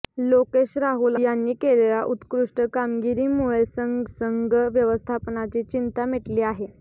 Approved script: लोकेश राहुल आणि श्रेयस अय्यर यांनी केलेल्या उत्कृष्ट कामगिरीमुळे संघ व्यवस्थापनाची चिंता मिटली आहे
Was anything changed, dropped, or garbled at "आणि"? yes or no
yes